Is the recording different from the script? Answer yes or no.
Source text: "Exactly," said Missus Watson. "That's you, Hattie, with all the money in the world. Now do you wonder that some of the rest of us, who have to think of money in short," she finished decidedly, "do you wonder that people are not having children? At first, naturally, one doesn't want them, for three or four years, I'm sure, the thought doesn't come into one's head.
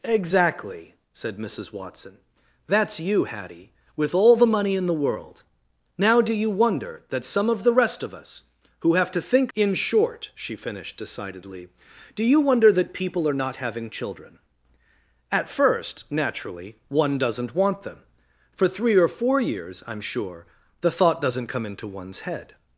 yes